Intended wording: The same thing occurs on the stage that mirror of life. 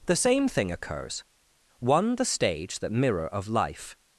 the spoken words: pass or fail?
fail